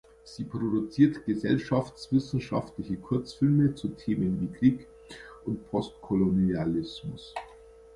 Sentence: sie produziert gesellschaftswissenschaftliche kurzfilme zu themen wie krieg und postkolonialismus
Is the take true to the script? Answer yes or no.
yes